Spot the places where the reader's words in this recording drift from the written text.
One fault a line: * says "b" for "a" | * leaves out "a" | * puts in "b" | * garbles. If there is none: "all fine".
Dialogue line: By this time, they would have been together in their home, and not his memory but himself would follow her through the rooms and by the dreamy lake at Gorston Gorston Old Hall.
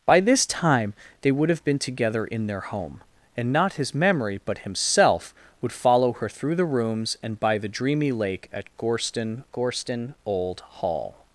all fine